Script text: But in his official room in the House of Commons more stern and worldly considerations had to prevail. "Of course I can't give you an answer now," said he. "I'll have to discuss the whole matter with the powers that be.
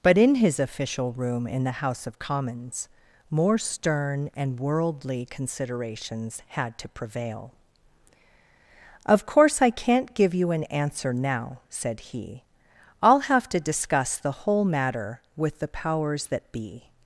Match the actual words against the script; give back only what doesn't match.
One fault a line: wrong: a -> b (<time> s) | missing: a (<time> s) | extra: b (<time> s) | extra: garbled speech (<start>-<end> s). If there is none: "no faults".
no faults